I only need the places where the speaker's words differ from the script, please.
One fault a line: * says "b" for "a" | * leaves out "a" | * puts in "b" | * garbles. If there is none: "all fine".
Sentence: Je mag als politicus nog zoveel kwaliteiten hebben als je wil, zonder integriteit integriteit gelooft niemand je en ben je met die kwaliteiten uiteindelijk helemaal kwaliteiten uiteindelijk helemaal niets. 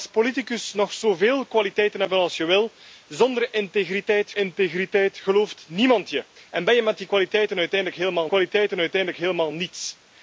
all fine